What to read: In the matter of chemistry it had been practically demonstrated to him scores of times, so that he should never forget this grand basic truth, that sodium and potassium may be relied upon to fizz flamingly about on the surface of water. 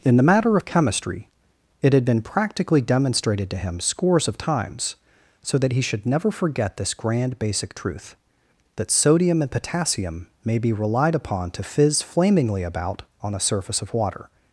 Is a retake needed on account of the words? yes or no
no